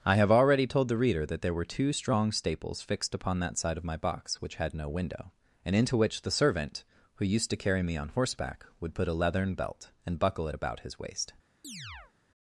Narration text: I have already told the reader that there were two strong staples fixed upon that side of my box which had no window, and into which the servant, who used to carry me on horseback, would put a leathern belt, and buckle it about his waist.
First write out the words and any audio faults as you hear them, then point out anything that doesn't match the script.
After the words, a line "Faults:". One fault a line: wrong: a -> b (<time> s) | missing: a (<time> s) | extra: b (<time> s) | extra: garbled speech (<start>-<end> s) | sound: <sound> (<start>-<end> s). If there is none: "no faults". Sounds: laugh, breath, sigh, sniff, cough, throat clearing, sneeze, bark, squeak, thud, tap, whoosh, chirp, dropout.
I have already told the reader that there were two strong staples fixed upon that side of my box which had no window, and into which the servant, who used to carry me on horseback, would put a leathern belt, and buckle it about his waist.
Faults:
sound: chirp (11.6-12.1 s)